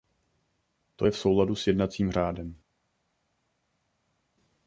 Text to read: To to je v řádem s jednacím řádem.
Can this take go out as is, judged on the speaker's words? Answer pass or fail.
fail